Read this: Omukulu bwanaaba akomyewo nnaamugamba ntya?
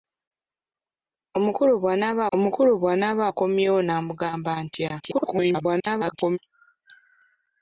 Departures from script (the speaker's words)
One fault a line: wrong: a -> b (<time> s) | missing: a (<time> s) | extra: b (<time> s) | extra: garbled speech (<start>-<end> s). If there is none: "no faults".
extra: omukulu bwanaaba (2.3 s)
extra: garbled speech (5.0-6.4 s)